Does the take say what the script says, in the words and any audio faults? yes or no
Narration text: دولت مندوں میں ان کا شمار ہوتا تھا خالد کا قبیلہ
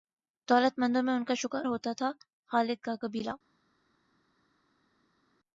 no